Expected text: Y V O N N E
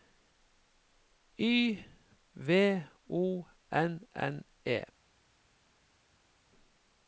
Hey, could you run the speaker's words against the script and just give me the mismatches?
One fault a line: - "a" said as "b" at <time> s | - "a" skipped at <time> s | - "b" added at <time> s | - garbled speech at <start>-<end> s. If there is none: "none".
none